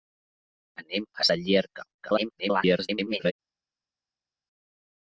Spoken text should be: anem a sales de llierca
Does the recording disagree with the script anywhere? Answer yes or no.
yes